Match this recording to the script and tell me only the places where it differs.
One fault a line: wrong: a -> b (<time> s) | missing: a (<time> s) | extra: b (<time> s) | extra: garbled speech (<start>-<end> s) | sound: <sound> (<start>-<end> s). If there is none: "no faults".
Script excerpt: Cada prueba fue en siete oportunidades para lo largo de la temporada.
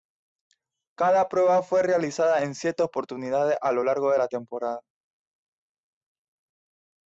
extra: realizada (1.8 s)
wrong: para -> a (3.6 s)